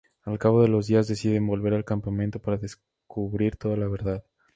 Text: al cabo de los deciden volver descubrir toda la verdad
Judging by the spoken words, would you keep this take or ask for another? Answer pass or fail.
fail